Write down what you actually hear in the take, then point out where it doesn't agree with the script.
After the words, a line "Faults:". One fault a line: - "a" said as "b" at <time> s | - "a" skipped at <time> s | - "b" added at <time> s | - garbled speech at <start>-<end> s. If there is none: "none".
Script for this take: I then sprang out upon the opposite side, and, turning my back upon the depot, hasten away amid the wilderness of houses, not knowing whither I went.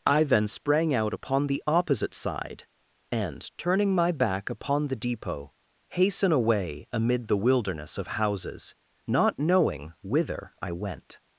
I then sprang out upon the opposite side, and, turning my back upon the depot, hasten away amid the wilderness of houses, not knowing whither I went.
Faults:
none